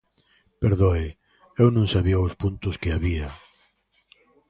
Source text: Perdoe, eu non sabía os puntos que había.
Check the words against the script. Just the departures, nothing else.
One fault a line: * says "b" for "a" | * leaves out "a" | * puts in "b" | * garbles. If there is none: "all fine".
all fine